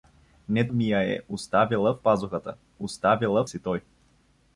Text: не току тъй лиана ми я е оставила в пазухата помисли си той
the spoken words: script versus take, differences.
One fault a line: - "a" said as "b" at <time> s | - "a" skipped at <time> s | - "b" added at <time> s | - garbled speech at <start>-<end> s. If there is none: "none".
- "току тъй лиана" skipped at 0.7 s
- "помисли" said as "оставила" at 2.8 s